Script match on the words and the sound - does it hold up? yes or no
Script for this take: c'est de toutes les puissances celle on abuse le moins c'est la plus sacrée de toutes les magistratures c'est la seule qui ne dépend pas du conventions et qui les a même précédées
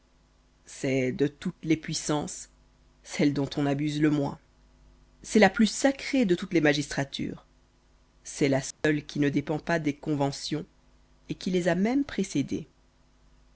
no